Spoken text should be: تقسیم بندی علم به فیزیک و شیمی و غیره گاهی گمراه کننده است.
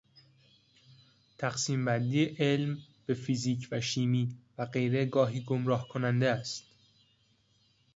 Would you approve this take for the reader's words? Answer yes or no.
yes